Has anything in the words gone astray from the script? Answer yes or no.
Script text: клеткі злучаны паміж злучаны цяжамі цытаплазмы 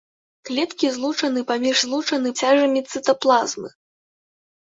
no